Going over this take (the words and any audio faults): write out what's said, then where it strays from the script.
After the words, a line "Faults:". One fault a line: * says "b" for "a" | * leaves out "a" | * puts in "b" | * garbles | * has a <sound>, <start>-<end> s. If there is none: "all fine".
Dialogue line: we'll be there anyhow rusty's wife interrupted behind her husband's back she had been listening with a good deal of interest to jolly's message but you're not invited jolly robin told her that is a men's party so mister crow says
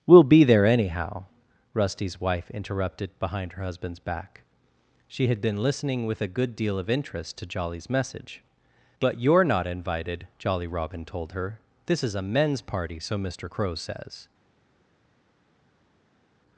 we'll be there anyhow rusty's wife interrupted behind her husband's back she had been listening with a good deal of interest to jolly's message but you're not invited jolly robin told her this is a men's party so mister crow says
Faults:
* says "this" for "that"